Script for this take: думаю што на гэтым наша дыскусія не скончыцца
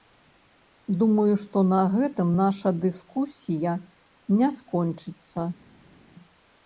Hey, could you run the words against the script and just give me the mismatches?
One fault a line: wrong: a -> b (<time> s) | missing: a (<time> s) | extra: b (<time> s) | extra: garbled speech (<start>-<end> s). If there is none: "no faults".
no faults